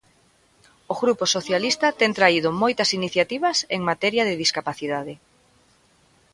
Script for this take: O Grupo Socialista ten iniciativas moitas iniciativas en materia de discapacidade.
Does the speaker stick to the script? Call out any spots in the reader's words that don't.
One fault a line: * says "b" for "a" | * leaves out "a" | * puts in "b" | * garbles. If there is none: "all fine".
* says "traído" for "iniciativas"